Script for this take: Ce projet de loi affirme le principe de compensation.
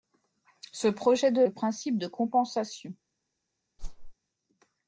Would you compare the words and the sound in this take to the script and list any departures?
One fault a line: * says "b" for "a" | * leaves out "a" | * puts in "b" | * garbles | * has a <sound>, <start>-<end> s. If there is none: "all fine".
* leaves out "loi affirme"
* has a whoosh, 3.8-4.1 s